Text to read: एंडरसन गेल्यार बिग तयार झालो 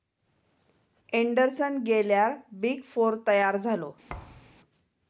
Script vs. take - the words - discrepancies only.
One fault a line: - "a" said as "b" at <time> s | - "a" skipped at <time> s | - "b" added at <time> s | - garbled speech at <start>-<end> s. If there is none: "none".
- "फोर" added at 2.9 s